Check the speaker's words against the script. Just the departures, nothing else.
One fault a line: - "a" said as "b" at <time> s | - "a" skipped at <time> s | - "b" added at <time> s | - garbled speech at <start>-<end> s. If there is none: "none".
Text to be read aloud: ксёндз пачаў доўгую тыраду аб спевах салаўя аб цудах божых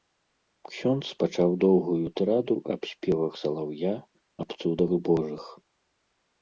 none